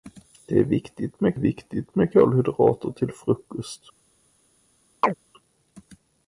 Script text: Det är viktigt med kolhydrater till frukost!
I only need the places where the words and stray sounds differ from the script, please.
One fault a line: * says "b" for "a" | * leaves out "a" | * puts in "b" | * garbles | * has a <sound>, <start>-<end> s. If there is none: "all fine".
* puts in "viktigt med"
* has a chirp, 5.0-5.1 s